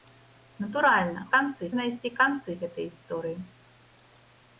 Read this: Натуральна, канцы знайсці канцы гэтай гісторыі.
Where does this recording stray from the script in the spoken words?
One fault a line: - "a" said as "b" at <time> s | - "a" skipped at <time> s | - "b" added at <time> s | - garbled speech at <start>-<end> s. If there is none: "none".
none